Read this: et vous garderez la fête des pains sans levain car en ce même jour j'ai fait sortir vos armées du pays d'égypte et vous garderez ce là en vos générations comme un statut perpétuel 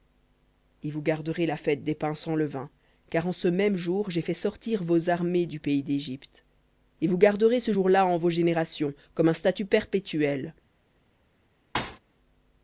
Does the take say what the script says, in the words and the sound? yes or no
no